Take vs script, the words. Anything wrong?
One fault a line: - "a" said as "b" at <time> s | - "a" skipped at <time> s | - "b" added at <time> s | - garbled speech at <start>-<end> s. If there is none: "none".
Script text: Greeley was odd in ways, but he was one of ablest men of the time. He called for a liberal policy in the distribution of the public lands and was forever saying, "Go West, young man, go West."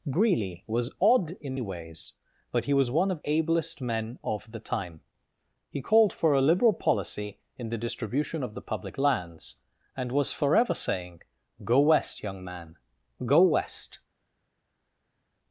none